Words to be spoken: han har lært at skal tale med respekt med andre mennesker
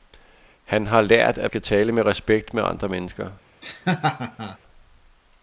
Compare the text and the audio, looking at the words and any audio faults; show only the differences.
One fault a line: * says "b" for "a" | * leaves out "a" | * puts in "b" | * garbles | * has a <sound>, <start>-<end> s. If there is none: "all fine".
* has a laugh, 3.6-4.6 s